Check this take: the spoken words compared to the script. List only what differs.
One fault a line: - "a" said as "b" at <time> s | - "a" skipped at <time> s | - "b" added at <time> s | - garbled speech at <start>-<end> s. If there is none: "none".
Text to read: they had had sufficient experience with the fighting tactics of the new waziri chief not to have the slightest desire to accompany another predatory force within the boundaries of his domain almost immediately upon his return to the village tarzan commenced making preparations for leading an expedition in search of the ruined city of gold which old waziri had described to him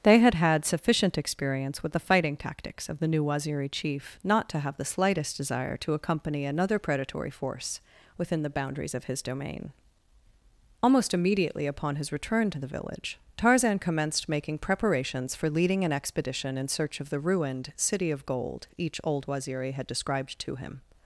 - "which" said as "each" at 18.8 s